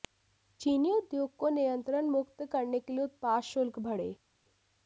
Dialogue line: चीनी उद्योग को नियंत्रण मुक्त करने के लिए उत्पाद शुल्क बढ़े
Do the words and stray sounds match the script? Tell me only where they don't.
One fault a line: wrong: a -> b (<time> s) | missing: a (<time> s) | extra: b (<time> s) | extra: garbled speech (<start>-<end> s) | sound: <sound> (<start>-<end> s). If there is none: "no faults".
no faults